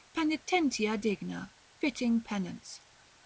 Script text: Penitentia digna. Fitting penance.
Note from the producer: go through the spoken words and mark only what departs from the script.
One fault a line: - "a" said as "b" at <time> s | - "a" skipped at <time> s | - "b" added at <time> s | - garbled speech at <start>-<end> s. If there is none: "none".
none